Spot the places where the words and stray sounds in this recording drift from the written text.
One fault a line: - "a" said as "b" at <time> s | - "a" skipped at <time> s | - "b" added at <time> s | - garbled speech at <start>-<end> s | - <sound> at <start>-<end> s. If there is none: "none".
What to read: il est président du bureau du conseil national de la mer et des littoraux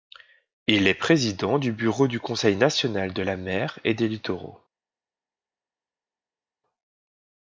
none